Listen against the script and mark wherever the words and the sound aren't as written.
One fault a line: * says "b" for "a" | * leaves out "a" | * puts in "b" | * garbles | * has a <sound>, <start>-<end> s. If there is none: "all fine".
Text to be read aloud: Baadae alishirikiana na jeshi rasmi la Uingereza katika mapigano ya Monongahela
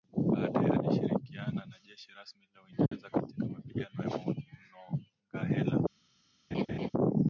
* has a dropout, 2.9-2.9 s
* has a laugh, 6.5-6.9 s